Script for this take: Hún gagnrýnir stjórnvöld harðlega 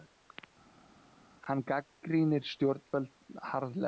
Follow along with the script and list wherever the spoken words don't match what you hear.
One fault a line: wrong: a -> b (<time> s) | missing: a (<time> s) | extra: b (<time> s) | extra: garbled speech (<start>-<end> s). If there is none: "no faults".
wrong: Hún -> Hann (1.5 s)